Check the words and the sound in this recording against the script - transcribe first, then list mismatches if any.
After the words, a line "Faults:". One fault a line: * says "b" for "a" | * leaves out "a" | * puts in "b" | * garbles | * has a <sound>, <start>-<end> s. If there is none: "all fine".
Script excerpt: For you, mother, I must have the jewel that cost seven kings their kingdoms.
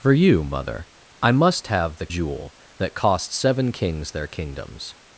For you, mother, I must have the jewel that cost seven kings their kingdoms.
Faults:
all fine